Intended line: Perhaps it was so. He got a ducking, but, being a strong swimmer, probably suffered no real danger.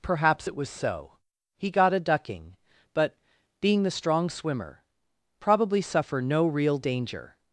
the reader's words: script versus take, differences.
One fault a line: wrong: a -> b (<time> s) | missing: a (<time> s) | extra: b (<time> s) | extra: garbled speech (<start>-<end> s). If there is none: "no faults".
wrong: a -> the (3.8 s)
wrong: suffered -> suffer (5.8 s)